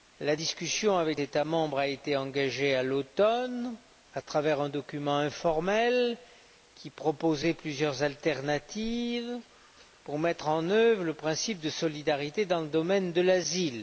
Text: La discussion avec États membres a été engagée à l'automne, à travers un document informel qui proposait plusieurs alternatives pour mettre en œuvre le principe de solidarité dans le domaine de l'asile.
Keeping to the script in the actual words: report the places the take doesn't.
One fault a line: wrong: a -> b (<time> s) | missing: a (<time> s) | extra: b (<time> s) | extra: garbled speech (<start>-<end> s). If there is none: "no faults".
no faults